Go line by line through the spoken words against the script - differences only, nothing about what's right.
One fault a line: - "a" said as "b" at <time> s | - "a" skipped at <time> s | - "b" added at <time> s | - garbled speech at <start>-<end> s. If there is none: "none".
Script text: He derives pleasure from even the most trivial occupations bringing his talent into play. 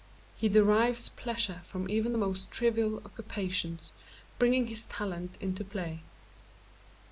none